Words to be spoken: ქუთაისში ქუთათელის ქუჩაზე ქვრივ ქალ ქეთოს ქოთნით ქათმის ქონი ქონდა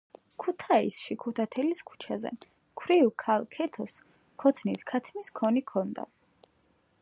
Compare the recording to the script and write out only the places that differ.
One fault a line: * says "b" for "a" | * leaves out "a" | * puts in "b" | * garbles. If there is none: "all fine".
all fine